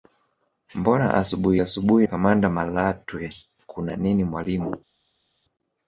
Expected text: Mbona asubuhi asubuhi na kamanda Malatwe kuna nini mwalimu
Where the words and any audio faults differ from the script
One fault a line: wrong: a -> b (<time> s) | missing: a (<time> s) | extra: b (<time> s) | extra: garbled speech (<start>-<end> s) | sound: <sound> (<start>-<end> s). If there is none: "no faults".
missing: na (2.1 s)